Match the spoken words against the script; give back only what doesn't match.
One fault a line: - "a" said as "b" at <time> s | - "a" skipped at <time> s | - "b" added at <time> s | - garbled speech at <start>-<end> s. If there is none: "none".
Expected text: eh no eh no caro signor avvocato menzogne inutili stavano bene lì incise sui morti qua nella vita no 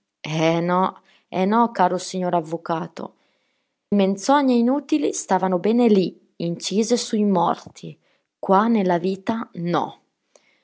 none